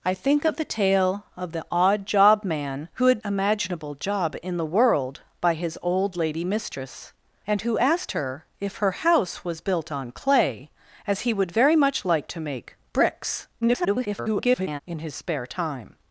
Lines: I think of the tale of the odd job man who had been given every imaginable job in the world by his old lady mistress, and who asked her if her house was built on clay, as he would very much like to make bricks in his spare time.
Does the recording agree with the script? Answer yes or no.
no